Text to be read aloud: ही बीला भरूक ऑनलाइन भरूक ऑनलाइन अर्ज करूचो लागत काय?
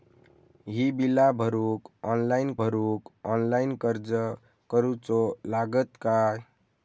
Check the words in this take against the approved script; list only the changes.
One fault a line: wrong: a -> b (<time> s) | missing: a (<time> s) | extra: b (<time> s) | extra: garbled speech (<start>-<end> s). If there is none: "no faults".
no faults